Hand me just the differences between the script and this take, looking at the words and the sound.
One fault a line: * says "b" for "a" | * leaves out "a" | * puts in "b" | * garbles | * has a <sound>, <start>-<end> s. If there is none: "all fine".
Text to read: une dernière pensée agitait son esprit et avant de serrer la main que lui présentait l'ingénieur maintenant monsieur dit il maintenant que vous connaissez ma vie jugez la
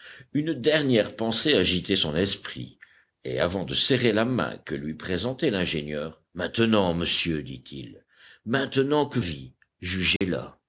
* leaves out "vous connaissez ma"
* has a dropout, 10.2-10.2 s